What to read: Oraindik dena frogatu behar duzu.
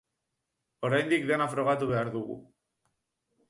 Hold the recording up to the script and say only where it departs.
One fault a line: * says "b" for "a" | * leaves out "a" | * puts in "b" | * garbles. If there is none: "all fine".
* says "dugu" for "duzu"